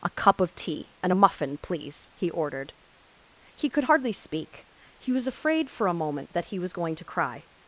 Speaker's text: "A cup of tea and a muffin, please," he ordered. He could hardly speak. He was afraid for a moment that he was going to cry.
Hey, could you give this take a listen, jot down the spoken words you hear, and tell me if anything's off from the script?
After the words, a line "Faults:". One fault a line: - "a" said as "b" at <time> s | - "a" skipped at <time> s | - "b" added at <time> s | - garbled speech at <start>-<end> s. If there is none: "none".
"A cup of tea and a muffin, please," he ordered. He could hardly speak. He was afraid for a moment that he was going to cry.
Faults:
none